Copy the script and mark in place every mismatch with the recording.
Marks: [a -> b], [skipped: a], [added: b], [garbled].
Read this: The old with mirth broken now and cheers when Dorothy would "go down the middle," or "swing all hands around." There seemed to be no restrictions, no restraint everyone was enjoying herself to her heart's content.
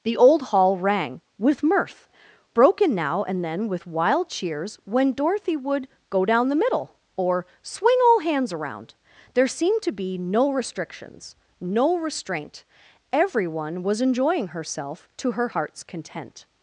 The old [added: hall rang] with mirth broken now and [added: then with wild] cheers when Dorothy would "go down the middle," or "swing all hands around." There seemed to be no restrictions, no restraint everyone was enjoying herself to her heart's content.